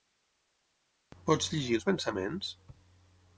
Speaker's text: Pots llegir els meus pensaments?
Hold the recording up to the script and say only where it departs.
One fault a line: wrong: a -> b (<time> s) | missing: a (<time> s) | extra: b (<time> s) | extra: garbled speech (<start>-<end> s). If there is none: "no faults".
missing: meus (1.9 s)